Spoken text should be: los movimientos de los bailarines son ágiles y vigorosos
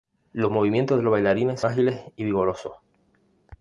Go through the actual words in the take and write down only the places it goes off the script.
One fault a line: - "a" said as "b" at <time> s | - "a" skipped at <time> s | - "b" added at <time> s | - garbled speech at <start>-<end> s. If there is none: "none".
- "son" skipped at 1.6 s